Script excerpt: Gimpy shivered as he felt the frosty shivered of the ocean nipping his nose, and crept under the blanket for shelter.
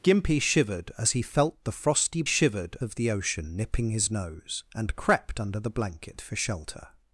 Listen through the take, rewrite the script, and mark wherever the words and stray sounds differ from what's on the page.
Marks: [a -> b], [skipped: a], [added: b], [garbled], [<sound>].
Gimpy shivered as he felt the frosty shivered of the ocean nipping his nose, and crept under the blanket for shelter.